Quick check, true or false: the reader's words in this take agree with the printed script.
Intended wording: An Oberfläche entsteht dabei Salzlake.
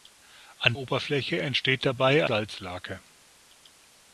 true